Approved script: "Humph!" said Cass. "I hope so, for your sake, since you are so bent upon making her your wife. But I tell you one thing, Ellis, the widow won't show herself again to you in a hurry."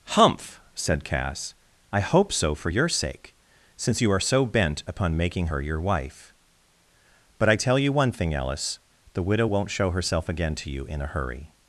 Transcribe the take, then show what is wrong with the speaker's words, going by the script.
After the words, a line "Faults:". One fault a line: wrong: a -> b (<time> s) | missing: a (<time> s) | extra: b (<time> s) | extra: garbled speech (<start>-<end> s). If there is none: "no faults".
"Humph!" said Cass. "I hope so, for your sake, since you are so bent upon making her your wife. But I tell you one thing, Ellis, the widow won't show herself again to you in a hurry."
Faults:
no faults